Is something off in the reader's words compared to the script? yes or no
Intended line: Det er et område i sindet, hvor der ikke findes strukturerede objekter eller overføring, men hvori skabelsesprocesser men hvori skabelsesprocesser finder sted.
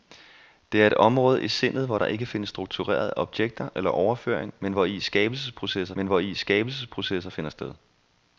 no